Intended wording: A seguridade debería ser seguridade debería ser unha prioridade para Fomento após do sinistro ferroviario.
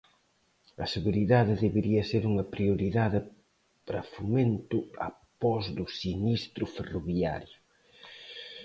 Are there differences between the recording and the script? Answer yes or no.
yes